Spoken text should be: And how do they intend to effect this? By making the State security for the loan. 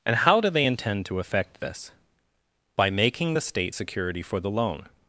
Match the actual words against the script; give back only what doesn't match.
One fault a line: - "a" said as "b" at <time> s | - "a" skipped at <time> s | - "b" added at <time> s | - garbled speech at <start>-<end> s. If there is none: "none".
none